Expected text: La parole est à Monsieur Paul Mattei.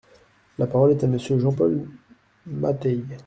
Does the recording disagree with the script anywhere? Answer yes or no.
yes